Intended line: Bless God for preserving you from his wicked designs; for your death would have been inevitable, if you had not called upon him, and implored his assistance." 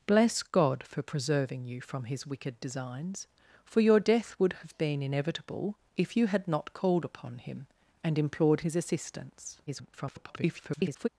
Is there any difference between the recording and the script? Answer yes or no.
yes